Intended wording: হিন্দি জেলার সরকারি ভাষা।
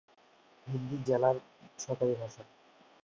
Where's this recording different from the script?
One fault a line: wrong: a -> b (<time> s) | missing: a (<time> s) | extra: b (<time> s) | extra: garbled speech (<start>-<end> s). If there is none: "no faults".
no faults